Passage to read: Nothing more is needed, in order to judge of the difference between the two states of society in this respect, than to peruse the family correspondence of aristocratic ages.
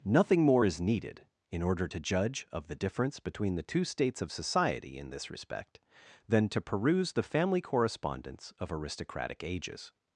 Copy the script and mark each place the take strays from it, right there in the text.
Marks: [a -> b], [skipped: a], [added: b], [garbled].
Nothing more is needed, in order to judge of the difference between the two states of society in this respect, than to peruse the family correspondence of aristocratic ages.